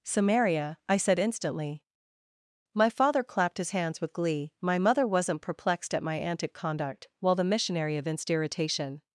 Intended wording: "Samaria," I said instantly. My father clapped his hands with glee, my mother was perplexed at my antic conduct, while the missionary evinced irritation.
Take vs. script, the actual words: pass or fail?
fail